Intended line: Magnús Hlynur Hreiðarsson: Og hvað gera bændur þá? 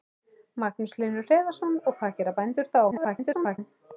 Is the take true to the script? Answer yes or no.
no